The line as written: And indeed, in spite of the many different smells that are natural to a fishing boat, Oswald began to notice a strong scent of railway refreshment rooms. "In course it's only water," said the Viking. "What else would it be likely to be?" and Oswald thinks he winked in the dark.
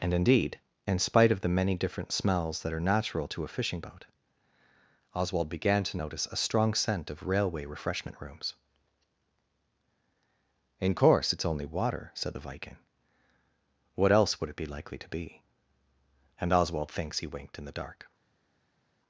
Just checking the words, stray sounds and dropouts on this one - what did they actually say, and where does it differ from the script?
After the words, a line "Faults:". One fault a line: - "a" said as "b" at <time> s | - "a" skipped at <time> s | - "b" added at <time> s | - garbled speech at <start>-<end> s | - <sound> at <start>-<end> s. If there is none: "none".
And indeed, in spite of the many different smells that are natural to a fishing boat, Oswald began to notice a strong scent of railway refreshment rooms. "In course it's only water," said the Viking. "What else would it be likely to be?" and Oswald thinks he winked in the dark.
Faults:
none